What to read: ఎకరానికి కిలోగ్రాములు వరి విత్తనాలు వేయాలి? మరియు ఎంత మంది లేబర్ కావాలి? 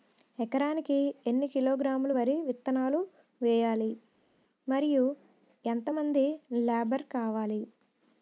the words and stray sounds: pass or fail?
fail